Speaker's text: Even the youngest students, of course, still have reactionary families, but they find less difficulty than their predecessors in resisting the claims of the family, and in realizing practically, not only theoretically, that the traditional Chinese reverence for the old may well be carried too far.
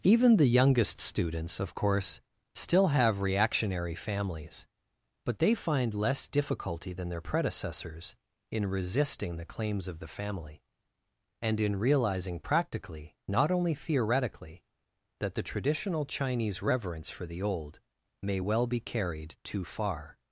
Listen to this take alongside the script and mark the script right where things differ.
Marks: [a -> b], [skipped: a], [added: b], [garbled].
Even the youngest students, of course, still have reactionary families, but they find less difficulty than their predecessors in resisting the claims of the family, and in realizing practically, not only theoretically, that the traditional Chinese reverence for the old may well be carried too far.